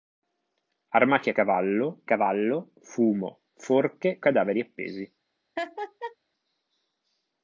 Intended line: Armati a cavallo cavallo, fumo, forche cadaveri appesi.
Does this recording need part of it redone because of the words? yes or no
no